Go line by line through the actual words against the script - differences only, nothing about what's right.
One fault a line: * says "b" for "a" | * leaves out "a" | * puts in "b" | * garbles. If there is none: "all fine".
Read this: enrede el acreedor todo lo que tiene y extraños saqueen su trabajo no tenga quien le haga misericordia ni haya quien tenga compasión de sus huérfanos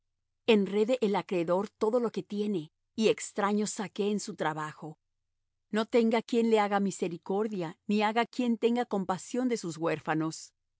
all fine